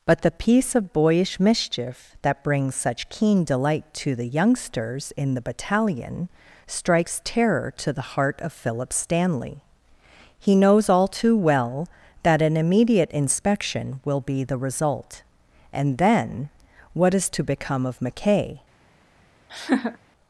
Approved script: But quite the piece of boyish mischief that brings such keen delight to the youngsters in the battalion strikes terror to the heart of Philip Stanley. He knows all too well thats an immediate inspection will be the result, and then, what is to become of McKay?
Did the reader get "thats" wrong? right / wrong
wrong